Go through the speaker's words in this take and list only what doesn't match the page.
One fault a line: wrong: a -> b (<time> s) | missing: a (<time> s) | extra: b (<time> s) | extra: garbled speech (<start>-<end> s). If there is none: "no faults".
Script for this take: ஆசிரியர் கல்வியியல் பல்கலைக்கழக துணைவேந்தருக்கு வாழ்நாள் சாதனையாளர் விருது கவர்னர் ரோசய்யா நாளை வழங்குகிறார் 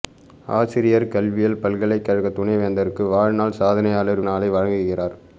missing: விருது கவர்னர் ரோசய்யா (4.2 s)